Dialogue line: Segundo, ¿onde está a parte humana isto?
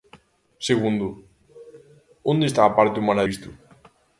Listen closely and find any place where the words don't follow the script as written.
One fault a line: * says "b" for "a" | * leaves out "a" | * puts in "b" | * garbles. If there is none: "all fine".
all fine